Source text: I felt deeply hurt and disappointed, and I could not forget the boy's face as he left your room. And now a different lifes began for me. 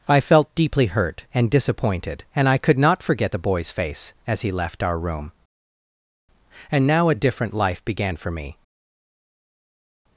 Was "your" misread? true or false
true